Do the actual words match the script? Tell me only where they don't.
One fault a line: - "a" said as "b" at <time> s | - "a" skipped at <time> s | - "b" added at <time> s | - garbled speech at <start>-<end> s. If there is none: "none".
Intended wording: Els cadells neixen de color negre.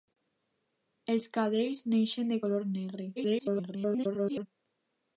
- garbled speech at 3.2-4.5 s